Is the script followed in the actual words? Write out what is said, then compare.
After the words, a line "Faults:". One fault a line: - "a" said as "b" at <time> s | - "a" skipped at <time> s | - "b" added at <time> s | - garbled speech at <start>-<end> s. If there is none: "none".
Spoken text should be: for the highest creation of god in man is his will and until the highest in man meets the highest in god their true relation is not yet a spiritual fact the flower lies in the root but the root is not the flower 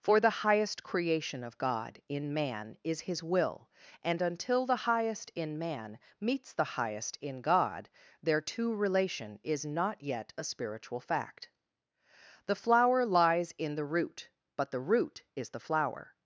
for the highest creation of god in man is his will and until the highest in man meets the highest in god their two relation is not yet a spiritual fact the flower lies in the root but the root is the flower
Faults:
- "true" said as "two" at 8.4 s
- "not" skipped at 15.5 s